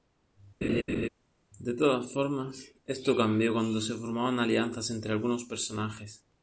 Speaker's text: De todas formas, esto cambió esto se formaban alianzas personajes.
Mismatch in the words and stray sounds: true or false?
true